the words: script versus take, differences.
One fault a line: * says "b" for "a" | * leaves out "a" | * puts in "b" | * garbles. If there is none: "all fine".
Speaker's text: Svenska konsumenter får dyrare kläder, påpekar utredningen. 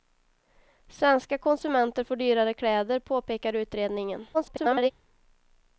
* garbles